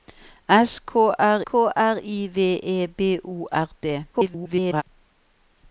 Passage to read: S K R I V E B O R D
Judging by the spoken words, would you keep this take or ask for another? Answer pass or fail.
fail